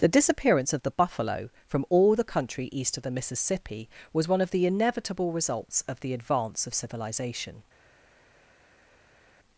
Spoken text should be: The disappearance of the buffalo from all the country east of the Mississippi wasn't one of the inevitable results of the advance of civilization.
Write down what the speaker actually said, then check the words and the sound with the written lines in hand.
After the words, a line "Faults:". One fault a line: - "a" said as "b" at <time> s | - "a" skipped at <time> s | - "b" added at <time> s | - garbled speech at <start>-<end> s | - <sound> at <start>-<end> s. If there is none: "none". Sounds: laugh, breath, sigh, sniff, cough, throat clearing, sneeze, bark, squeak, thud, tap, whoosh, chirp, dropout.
The disappearance of the buffalo from all the country east of the Mississippi was one of the inevitable results of the advance of civilization.
Faults:
- "wasn't" said as "was" at 4.1 s